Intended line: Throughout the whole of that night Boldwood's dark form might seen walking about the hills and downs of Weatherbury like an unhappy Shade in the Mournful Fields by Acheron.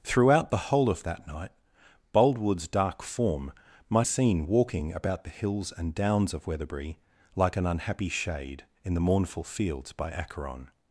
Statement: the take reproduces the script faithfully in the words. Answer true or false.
true